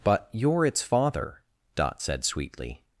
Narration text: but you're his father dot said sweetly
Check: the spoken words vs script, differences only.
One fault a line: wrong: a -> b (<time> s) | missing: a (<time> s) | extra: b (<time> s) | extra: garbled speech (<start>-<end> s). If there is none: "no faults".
wrong: his -> its (0.7 s)